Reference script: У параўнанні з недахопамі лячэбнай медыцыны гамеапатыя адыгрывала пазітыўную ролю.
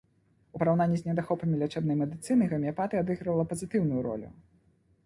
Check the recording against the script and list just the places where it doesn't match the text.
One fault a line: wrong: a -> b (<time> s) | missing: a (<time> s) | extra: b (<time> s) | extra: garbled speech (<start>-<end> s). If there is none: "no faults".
no faults